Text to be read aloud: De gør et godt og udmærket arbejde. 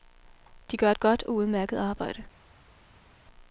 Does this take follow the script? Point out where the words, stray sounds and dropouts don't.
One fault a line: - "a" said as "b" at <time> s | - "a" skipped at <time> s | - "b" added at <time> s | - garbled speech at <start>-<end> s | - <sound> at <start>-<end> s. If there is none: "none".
none